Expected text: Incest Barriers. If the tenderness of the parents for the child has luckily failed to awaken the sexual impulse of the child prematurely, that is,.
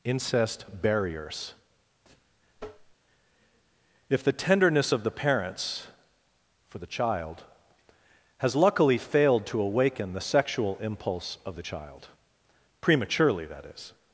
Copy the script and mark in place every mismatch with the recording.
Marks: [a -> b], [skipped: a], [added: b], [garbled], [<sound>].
Incest Barriers. [tap] If the tenderness of the parents for the child has luckily failed to awaken the sexual impulse of the child prematurely, that is,.